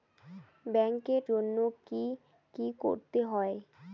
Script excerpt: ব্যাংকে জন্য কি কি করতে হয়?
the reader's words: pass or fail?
pass